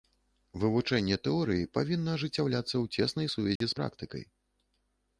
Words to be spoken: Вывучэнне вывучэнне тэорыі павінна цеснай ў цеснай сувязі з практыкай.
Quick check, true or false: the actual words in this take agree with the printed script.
false